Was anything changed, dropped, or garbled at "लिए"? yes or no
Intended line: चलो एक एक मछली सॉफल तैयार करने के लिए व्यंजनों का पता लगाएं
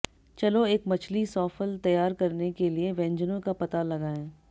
no